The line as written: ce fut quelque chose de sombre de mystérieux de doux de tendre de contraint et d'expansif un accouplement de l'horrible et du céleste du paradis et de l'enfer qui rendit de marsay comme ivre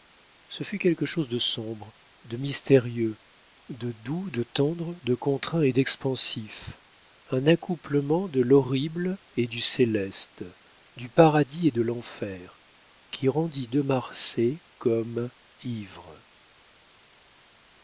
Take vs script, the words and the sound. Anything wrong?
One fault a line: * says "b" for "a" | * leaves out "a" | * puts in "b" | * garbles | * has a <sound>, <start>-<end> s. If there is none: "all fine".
all fine